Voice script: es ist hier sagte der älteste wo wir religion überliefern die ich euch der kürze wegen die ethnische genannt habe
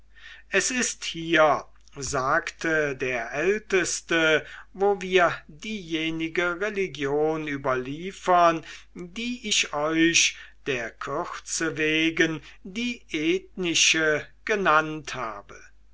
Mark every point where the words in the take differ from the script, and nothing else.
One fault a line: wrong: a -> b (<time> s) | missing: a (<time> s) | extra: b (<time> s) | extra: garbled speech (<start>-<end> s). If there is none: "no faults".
extra: diejenige (5.5 s)